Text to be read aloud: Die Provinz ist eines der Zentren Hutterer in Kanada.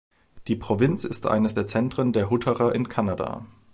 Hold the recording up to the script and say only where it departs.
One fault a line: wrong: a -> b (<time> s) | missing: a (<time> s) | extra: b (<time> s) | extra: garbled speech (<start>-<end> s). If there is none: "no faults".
extra: der (2.1 s)